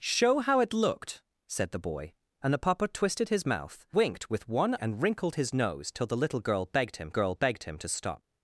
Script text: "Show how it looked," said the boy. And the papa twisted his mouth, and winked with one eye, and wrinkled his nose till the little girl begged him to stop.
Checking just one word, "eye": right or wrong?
wrong